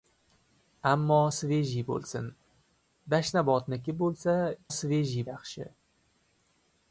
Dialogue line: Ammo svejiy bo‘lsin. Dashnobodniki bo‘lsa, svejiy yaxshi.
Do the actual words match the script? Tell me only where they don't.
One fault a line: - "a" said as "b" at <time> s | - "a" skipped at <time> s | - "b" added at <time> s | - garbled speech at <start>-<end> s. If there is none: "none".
none